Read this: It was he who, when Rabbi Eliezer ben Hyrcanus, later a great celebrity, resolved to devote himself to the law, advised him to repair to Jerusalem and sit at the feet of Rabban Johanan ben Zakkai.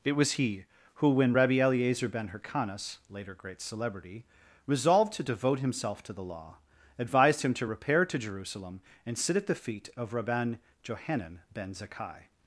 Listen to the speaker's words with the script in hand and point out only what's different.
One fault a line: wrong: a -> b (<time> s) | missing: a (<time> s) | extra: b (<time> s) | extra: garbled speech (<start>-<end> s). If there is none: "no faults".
missing: a (3.3 s)